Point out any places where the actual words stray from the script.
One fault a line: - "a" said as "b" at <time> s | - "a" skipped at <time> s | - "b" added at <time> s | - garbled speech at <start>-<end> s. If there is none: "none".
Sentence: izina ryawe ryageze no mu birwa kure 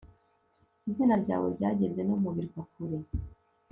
none